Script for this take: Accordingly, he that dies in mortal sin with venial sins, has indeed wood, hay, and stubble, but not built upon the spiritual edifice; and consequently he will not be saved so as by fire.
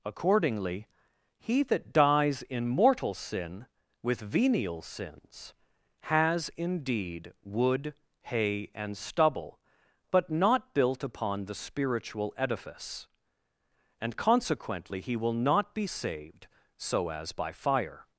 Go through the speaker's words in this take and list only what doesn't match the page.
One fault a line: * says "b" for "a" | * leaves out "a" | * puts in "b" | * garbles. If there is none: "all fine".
all fine